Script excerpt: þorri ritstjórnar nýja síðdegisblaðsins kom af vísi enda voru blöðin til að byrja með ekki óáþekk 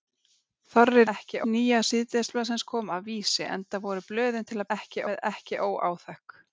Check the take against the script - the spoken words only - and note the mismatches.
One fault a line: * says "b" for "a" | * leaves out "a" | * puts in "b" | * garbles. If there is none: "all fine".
* says "ekki" for "ritstjórnar"
* says "ekki" for "byrja"